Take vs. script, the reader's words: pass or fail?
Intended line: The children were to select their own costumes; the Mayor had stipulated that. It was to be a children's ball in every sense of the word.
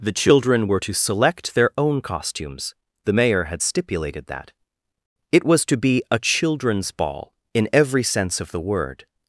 pass